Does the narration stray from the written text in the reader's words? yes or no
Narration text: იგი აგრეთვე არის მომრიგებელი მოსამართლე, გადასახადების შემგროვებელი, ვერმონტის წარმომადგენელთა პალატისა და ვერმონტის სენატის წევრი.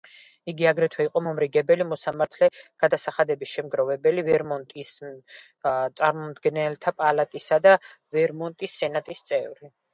yes